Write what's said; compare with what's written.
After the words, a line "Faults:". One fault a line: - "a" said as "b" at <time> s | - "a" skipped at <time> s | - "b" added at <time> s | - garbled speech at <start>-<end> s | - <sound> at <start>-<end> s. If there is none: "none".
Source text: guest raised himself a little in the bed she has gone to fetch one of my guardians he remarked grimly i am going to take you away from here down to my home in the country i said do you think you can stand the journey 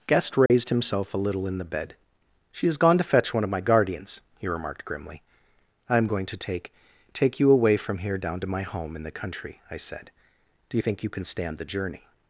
guest raised himself a little in the bed she has gone to fetch one of my guardians he remarked grimly i am going to take take you away from here down to my home in the country i said do you think you can stand the journey
Faults:
- dropout at 0.5-0.5 s
- "take" added at 7.1 s